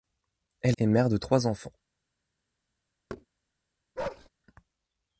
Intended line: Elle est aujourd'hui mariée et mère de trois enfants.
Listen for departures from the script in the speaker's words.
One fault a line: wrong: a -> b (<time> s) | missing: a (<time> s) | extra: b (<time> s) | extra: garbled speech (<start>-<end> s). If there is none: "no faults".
missing: est aujourd'hui mariée (0.8 s)